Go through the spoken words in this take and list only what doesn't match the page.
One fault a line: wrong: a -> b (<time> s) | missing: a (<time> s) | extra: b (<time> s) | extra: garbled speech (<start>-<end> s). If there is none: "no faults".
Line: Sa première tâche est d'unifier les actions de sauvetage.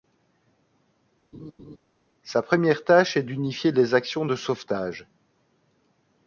no faults